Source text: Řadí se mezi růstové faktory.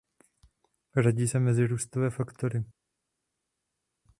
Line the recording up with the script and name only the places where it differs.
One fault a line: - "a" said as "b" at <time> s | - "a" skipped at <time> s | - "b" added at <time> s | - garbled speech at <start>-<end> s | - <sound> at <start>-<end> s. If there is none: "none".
none